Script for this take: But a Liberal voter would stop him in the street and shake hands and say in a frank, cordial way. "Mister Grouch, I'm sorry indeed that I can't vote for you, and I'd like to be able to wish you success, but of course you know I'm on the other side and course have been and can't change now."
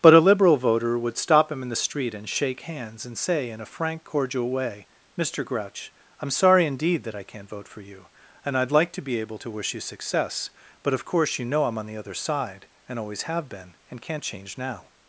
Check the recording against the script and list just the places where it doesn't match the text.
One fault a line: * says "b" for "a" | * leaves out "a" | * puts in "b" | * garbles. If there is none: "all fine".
* says "always" for "course"